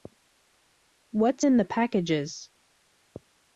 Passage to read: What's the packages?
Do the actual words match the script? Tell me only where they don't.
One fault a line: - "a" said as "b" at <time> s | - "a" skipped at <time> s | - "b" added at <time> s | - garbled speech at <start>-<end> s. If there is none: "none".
- "in" added at 1.4 s